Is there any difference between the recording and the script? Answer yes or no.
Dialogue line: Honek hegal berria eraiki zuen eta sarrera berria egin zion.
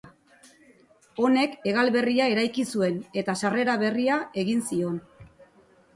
no